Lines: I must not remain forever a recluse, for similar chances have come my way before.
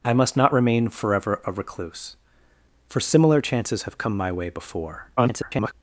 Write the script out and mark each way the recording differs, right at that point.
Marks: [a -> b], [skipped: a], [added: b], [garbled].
I must not remain forever a recluse, for similar chances have come my way before. [garbled]